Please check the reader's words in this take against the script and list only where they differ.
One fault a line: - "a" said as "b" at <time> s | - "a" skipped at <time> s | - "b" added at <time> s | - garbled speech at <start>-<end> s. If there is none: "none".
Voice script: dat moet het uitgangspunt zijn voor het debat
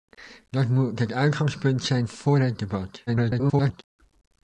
- garbled speech at 3.1-3.8 s